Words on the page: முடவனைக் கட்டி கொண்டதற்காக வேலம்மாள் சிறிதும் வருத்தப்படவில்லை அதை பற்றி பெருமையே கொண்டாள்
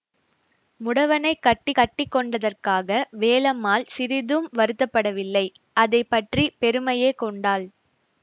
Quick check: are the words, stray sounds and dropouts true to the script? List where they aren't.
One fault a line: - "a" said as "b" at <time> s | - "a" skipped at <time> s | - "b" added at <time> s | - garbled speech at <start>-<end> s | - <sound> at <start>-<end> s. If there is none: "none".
- "கட்டி" added at 1.7 s